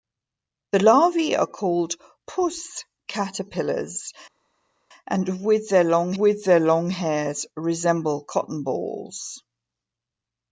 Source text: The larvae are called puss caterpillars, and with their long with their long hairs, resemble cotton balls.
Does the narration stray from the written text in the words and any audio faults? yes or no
no